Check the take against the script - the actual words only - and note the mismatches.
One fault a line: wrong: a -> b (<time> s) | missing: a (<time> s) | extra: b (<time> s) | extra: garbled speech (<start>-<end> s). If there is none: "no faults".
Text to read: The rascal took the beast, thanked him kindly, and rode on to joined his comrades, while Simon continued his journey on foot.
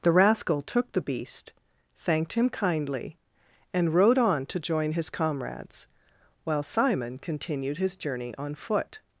wrong: joined -> join (4.6 s)